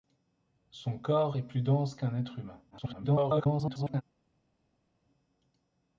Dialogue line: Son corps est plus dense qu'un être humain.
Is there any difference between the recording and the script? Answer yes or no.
yes